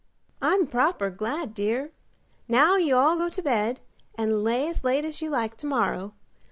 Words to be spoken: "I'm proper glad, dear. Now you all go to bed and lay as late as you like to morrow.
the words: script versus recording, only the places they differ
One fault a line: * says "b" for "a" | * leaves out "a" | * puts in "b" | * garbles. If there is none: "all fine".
all fine